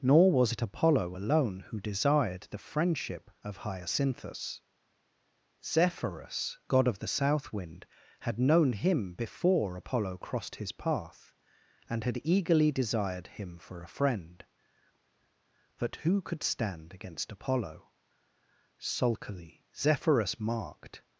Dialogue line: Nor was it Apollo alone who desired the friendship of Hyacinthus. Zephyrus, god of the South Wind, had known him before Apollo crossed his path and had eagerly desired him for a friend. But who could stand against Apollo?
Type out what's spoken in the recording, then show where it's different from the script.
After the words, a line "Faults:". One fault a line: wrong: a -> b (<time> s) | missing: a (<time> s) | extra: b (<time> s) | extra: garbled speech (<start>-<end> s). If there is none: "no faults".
Nor was it Apollo alone who desired the friendship of Hyacinthus. Zephyrus, god of the South Wind, had known him before Apollo crossed his path and had eagerly desired him for a friend. But who could stand against Apollo? Sulkily Zephyrus marked
Faults:
extra: Sulkily Zephyrus marked (18.8 s)